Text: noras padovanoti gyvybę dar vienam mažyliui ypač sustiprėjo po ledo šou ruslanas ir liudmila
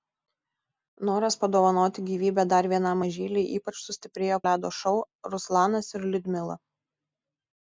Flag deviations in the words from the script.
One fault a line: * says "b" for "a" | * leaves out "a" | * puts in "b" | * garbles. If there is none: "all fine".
* leaves out "po"